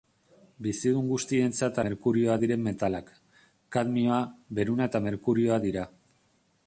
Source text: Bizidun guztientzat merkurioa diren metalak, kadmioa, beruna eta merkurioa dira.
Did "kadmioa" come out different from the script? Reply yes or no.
no